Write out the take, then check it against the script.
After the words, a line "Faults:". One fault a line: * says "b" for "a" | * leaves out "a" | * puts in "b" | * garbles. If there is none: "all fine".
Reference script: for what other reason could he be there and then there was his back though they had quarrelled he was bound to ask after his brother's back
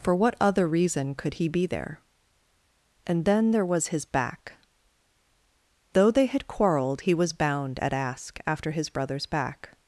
for what other reason could he be there and then there was his back though they had quarrelled he was bound at ask after his brother's back
Faults:
* says "at" for "to"